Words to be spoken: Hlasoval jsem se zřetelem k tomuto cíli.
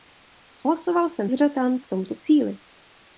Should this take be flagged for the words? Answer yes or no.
yes